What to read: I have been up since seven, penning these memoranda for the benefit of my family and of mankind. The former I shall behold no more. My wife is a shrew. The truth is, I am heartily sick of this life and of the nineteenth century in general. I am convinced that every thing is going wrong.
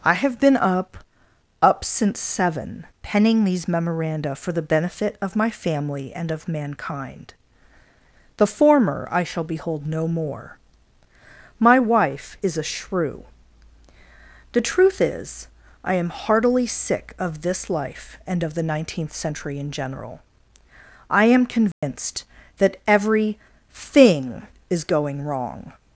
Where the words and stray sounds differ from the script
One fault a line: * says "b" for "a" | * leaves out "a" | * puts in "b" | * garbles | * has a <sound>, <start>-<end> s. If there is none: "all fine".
* puts in "up"
* has a dropout, 21.7-21.8 s